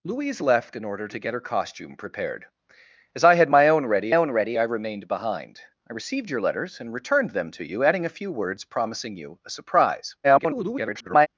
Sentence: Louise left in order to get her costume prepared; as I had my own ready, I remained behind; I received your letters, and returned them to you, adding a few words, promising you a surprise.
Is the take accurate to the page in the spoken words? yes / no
no